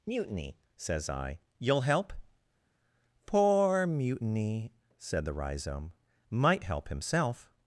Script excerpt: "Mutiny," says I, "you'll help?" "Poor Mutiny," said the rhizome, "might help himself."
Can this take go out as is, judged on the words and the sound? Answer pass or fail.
pass